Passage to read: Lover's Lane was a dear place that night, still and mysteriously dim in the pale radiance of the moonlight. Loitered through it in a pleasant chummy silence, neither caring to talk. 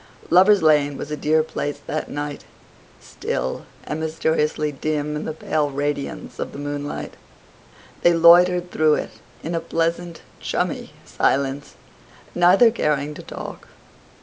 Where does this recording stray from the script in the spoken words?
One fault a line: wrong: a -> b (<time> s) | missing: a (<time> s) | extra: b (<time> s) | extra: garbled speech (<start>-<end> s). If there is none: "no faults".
extra: They (8.0 s)